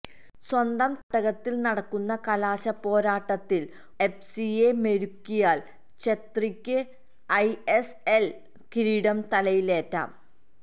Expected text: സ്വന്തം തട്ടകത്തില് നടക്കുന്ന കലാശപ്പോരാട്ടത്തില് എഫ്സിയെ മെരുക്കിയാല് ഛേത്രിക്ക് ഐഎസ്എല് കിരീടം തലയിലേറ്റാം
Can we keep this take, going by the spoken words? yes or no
yes